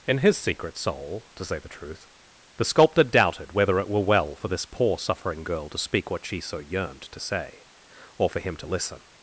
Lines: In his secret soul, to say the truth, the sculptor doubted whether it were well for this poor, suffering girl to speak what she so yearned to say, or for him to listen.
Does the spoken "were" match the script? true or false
true